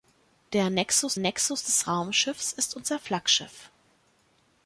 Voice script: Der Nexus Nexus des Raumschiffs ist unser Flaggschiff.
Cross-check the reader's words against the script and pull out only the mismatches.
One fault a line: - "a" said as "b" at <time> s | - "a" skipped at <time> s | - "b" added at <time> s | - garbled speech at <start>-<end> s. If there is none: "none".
none